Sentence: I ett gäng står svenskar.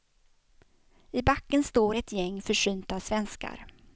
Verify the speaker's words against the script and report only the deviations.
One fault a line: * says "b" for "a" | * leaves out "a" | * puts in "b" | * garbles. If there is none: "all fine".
* puts in "backen står"
* says "försynta" for "står"